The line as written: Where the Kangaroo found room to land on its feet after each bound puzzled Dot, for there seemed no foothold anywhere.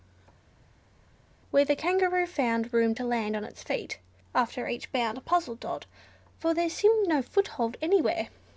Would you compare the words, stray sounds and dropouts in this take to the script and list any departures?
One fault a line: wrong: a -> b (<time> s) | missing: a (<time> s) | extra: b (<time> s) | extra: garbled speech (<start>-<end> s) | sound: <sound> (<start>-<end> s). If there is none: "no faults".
no faults